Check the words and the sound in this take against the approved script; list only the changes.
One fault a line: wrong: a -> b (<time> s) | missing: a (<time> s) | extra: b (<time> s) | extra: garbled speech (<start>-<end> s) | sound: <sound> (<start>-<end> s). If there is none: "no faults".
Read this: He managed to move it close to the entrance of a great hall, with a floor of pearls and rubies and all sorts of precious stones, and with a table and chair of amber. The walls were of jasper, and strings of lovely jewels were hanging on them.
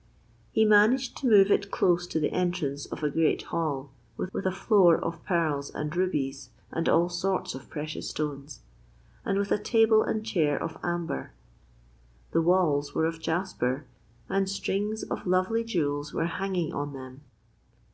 extra: with (4.3 s)